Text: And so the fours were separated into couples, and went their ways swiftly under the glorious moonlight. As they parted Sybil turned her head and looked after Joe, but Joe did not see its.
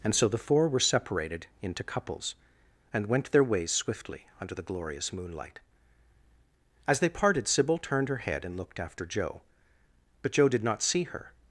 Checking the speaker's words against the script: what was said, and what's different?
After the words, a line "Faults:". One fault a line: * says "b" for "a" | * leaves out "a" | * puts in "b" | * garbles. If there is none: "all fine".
And so the four were separated into couples, and went their ways swiftly under the glorious moonlight. As they parted Sybil turned her head and looked after Joe, but Joe did not see her.
Faults:
* says "four" for "fours"
* says "her" for "its"